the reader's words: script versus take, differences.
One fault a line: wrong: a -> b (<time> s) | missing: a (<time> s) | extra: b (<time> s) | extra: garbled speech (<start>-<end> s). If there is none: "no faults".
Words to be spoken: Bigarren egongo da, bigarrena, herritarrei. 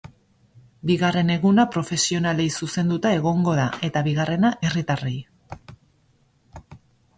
extra: eguna profesionalei zuzenduta (1.3 s)
extra: eta (3.9 s)